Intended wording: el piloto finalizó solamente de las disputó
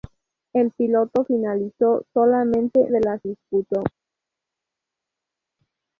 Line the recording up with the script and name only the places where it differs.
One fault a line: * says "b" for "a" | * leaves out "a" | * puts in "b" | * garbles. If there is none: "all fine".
all fine